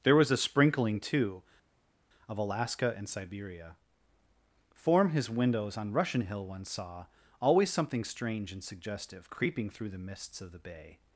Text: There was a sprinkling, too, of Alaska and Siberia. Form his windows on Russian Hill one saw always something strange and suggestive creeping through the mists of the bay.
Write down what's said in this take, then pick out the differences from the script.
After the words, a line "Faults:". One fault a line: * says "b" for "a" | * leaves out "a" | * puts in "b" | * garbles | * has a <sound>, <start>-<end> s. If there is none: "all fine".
There was a sprinkling, too, of Alaska and Siberia. Form his windows on Russian Hill one saw always something strange and suggestive creeping through the mists of the bay.
Faults:
all fine